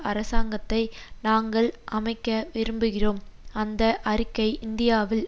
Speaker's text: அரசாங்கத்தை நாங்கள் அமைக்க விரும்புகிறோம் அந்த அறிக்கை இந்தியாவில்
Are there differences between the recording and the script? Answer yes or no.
no